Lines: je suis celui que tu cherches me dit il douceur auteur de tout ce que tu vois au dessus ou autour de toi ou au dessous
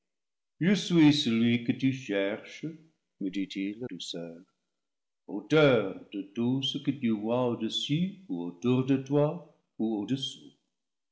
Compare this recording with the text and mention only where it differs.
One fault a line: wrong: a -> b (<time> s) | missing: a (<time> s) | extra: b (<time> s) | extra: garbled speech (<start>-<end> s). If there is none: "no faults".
no faults